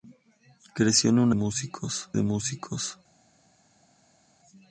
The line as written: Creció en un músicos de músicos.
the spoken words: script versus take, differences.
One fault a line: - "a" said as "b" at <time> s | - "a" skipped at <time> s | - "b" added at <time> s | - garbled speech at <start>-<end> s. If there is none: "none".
none